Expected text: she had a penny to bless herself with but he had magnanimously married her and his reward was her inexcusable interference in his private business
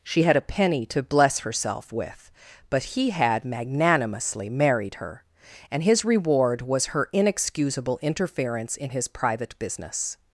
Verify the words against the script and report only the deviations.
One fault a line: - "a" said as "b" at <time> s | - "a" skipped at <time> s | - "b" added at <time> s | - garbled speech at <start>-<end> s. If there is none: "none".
none